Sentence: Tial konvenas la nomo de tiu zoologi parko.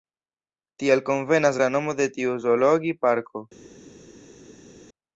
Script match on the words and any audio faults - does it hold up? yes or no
yes